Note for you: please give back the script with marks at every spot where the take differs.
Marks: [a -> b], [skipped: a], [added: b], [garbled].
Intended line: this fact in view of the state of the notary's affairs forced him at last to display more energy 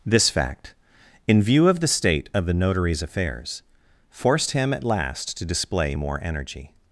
this fact in view of the state of the notary's affairs forced him at last to display more energy